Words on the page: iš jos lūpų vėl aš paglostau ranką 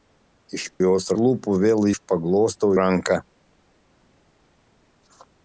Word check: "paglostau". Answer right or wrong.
right